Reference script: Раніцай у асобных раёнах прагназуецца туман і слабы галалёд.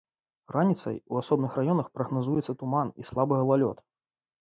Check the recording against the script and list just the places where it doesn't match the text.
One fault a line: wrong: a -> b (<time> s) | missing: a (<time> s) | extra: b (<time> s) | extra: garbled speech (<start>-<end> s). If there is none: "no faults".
no faults